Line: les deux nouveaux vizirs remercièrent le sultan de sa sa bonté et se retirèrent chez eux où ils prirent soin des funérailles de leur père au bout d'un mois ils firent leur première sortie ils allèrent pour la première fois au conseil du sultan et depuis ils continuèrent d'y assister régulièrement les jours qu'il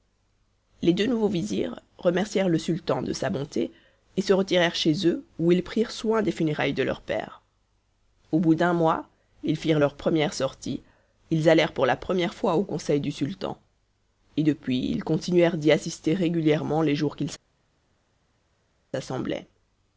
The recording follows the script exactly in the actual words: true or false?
false